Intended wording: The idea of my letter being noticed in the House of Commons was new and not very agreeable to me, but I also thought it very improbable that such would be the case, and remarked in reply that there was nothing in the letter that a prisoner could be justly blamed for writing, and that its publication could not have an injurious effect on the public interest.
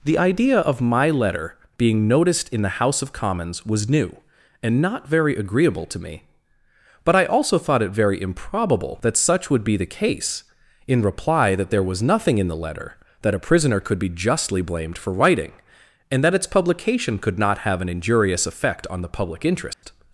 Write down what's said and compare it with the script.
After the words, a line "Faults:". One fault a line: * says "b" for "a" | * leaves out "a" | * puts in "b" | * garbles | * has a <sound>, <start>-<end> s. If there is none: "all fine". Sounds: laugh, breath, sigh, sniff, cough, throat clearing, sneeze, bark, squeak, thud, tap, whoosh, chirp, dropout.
The idea of my letter being noticed in the House of Commons was new and not very agreeable to me, but I also thought it very improbable that such would be the case, in reply that there was nothing in the letter that a prisoner could be justly blamed for writing, and that its publication could not have an injurious effect on the public interest.
Faults:
* leaves out "and remarked"
* has a dropout, 19.7-19.8 s